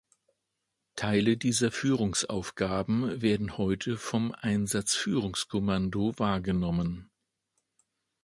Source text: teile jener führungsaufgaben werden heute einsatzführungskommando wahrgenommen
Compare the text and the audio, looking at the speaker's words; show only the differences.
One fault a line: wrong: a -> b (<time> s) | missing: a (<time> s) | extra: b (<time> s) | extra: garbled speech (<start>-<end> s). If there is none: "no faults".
wrong: jener -> dieser (1.4 s)
extra: vom (4.0 s)